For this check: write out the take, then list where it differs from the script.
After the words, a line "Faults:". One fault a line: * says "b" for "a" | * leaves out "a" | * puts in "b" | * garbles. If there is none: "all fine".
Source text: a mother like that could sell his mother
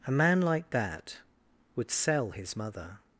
a man like that would sell his mother
Faults:
* says "man" for "mother"
* says "would" for "could"